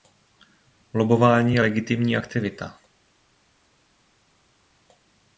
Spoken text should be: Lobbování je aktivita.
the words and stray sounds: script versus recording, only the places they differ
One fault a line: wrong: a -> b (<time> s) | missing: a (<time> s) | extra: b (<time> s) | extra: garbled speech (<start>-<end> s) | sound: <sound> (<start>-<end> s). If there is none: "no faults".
extra: legitimní (1.6 s)